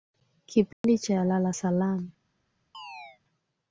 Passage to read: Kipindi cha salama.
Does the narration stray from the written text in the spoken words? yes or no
yes